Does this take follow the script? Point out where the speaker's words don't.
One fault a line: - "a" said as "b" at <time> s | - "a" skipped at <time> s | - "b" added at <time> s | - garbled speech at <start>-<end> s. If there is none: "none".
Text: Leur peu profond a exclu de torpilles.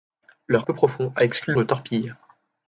none